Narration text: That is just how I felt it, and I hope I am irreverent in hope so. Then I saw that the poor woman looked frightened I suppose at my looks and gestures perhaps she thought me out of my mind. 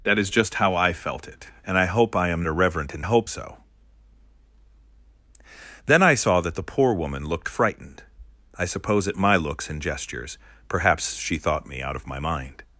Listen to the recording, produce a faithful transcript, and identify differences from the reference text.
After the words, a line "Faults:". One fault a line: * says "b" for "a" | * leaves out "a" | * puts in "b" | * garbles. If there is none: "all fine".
That is just how I felt it, and I hope I am irreverent in hope so. Then I saw that the poor woman looked frightened I suppose at my looks and gestures perhaps she thought me out of my mind.
Faults:
all fine